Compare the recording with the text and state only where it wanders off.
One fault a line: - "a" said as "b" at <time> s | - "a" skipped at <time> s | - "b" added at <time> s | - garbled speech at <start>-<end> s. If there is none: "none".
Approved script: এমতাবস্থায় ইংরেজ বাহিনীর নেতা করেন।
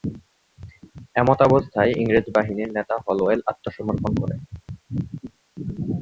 - "হলওয়েল আত্মসমর্পণ" added at 3.0 s